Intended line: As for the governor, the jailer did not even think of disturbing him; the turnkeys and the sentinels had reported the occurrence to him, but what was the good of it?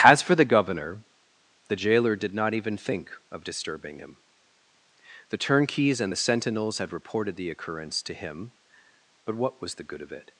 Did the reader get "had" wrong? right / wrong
right